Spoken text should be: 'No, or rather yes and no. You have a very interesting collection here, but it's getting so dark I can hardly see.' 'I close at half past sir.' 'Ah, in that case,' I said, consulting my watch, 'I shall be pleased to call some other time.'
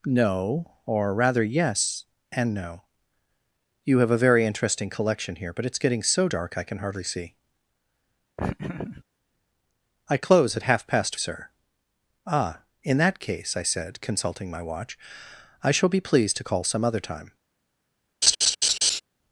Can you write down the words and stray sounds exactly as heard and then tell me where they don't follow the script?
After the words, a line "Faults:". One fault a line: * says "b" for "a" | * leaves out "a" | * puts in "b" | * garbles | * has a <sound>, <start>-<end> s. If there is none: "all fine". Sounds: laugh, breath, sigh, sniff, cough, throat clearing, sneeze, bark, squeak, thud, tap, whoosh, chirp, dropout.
'No, or rather yes and no. You have a very interesting collection here, but it's getting so dark I can hardly see.' 'I close at half past sir.' 'Ah, in that case,' I said, consulting my watch, 'I shall be pleased to call some other time.'
Faults:
* has a laugh, 8.4-9.0 s
* has a laugh, 18.2-19.0 s